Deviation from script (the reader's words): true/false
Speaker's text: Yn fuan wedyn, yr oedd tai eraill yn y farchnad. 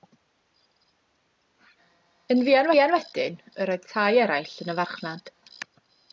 true